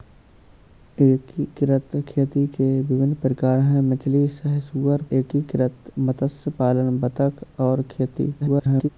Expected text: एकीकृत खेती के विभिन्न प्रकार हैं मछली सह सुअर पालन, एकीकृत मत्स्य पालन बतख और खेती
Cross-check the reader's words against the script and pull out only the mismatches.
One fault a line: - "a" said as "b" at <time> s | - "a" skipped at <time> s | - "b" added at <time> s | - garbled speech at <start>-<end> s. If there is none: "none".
- "पालन" skipped at 5.0 s
- garbled speech at 8.4-8.9 s